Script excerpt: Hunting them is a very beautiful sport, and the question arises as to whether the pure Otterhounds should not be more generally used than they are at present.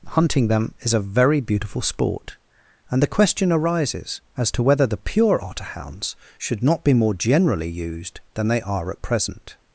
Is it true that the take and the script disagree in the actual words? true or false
false